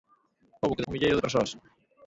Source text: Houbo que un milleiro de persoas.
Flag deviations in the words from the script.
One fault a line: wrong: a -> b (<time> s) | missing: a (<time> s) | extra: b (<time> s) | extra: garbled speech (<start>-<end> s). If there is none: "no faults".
no faults